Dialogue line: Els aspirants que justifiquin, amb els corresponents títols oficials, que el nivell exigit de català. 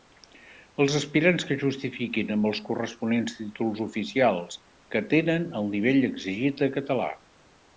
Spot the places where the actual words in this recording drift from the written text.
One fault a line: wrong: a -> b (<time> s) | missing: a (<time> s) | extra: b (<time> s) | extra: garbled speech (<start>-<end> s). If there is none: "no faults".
extra: tenen (5.1 s)